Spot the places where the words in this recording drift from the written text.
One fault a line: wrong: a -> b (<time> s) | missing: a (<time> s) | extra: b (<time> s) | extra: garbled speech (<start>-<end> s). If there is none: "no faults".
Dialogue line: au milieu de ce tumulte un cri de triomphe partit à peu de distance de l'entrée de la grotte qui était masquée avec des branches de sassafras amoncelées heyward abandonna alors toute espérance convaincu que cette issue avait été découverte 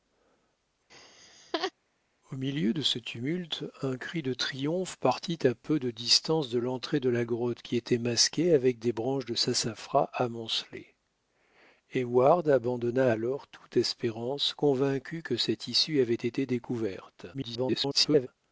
extra: garbled speech (17.3-18.3 s)